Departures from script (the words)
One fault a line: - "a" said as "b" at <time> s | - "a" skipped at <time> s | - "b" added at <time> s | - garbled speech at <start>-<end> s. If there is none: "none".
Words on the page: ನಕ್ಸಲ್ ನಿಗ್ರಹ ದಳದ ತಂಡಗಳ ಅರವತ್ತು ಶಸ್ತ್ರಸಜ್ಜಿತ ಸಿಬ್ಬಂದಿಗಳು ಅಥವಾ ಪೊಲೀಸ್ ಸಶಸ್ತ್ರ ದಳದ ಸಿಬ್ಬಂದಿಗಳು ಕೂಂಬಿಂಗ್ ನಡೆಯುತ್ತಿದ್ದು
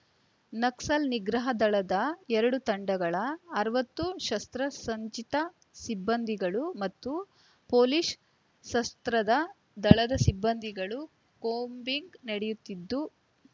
- "ಎರಡು" added at 2.4 s
- "ಅಥವಾ" said as "ಮತ್ತು" at 6.8 s